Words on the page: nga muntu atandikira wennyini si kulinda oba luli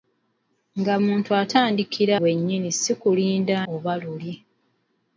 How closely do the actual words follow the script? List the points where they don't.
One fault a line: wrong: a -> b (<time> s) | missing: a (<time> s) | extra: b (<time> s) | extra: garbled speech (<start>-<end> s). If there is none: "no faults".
no faults